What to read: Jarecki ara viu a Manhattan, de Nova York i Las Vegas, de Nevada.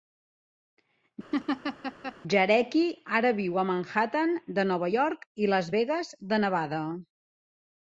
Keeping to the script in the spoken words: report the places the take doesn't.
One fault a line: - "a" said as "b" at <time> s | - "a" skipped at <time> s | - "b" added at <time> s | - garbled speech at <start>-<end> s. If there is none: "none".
none